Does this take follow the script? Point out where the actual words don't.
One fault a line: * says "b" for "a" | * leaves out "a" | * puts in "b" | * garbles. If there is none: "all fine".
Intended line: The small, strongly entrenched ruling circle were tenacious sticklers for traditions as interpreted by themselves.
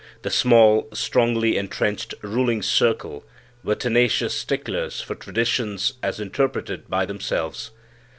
all fine